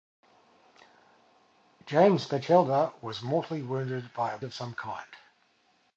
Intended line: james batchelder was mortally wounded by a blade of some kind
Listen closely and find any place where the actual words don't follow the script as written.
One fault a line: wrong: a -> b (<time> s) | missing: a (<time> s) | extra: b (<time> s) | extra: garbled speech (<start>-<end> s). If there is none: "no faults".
missing: blade (4.4 s)